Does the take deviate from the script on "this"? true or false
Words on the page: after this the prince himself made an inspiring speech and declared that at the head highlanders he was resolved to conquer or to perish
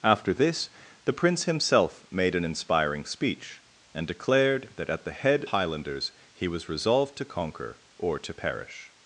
false